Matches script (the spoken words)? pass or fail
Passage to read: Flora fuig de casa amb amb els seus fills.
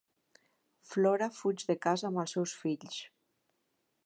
fail